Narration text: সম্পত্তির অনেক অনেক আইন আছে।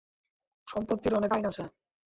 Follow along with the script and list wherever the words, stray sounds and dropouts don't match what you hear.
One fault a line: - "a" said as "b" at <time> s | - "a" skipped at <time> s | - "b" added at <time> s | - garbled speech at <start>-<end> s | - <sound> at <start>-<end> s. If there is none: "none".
- "অনেক" skipped at 1.3 s